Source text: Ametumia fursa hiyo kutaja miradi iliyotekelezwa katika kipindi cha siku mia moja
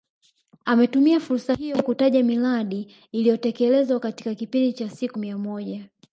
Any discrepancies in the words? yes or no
no